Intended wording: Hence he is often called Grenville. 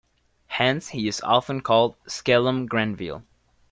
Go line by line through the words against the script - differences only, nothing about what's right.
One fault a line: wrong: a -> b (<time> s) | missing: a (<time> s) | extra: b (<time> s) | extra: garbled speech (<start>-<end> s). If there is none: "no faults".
extra: skellum (2.1 s)